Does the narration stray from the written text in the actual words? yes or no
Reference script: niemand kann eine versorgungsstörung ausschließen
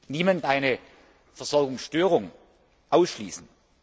yes